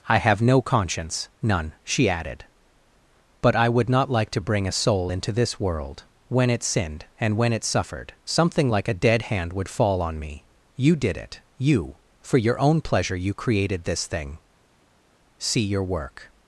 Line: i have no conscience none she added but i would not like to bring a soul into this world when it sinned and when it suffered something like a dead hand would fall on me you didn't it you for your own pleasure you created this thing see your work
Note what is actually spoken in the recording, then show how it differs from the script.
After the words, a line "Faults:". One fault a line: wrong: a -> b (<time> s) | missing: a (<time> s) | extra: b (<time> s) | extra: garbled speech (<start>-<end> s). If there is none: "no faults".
i have no conscience none she added but i would not like to bring a soul into this world when it sinned and when it suffered something like a dead hand would fall on me you did it you for your own pleasure you created this thing see your work
Faults:
wrong: didn't -> did (10.9 s)